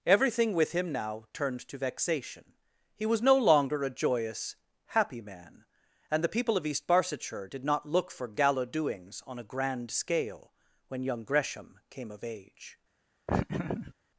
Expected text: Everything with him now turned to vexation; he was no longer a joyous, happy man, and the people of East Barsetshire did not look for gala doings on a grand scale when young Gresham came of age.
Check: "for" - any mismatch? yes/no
no